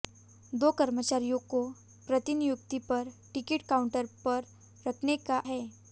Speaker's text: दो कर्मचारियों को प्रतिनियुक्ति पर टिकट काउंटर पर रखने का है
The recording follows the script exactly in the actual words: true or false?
true